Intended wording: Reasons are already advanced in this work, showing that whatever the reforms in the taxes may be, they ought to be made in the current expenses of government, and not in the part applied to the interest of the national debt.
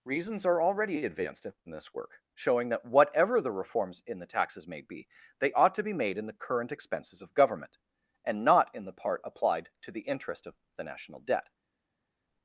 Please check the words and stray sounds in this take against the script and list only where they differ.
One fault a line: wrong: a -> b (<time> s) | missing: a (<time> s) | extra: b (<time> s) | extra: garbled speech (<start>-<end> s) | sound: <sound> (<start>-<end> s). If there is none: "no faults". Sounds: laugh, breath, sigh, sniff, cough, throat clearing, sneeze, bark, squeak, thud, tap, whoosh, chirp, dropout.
no faults